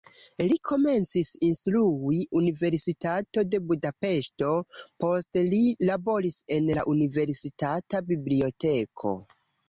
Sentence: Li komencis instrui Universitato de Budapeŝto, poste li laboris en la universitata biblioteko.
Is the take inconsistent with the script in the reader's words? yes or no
no